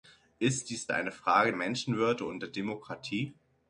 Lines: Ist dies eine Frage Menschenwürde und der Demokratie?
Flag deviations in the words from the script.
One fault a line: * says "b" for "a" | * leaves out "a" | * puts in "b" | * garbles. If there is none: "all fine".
all fine